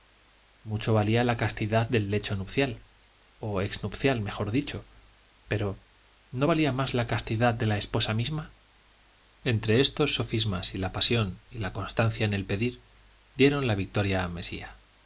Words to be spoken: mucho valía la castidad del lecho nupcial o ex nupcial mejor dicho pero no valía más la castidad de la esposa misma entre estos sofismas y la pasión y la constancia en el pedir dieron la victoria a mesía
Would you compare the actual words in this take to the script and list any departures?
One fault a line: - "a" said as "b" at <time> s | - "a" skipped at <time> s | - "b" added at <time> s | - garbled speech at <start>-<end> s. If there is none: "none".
none